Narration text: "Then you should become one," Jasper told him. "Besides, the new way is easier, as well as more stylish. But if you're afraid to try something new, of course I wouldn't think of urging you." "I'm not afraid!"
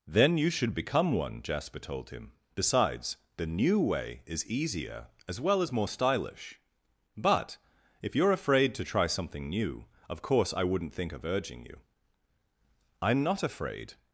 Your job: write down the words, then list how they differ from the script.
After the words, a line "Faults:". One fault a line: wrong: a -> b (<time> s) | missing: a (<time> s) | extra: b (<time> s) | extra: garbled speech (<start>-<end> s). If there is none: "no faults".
"Then you should become one," Jasper told him. "Besides, the new way is easier, as well as more stylish. But if you're afraid to try something new, of course I wouldn't think of urging you." "I'm not afraid!"
Faults:
no faults